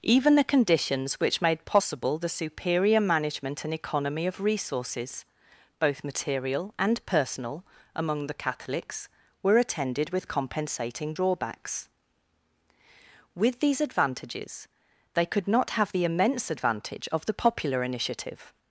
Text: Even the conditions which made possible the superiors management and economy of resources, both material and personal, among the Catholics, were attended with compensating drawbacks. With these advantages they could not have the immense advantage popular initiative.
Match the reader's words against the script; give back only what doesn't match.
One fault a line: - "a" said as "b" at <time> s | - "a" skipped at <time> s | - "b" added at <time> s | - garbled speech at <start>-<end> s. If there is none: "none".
- "superiors" said as "superior" at 2.3 s
- "of the" added at 17.1 s